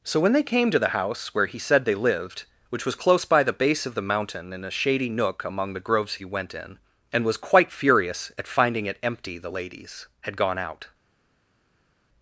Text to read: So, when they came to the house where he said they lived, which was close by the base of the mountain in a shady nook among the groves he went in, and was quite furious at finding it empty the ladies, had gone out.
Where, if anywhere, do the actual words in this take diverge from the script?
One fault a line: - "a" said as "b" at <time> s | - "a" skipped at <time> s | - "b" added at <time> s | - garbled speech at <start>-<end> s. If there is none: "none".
none